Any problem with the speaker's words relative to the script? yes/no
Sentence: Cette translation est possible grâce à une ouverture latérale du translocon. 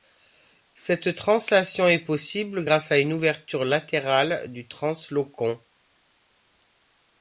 no